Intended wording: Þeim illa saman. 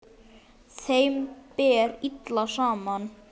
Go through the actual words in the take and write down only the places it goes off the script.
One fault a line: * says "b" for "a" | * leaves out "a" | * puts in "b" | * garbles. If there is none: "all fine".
* puts in "ber"